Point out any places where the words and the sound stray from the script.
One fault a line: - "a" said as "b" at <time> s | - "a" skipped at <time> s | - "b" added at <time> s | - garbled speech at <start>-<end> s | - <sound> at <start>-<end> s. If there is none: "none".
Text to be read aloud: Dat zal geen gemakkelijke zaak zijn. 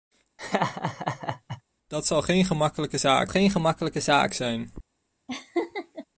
- laugh at 0.4-1.6 s
- "geen gemakkelijke zaak" added at 3.3 s
- laugh at 5.3-6.1 s